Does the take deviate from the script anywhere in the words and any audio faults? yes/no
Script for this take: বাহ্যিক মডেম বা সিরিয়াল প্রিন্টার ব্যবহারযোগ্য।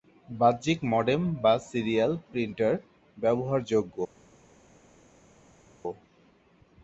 no